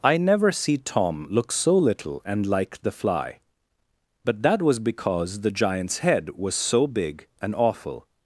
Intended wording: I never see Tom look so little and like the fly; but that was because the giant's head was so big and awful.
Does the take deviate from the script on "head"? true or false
false